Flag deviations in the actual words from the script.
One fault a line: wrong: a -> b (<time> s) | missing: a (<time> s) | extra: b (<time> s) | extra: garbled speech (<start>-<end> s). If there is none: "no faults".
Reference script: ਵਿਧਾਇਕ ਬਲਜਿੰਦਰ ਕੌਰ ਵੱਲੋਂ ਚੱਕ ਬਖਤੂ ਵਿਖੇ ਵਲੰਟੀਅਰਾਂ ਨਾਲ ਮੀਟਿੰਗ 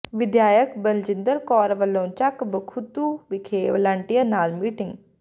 no faults